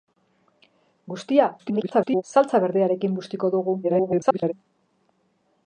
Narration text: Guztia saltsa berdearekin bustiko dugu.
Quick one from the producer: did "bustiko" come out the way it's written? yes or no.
yes